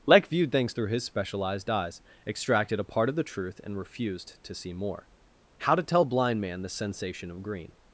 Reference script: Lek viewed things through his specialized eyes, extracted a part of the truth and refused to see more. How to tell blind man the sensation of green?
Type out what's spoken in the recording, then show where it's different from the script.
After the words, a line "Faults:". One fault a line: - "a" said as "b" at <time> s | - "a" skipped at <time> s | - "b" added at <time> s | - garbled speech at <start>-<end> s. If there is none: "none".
Lek viewed things through his specialized eyes, extracted a part of the truth and refused to see more. How to tell blind man the sensation of green?
Faults:
none